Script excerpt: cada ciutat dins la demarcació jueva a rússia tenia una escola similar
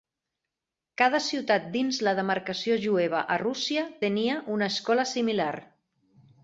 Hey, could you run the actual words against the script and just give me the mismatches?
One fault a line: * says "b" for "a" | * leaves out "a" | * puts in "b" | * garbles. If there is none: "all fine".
all fine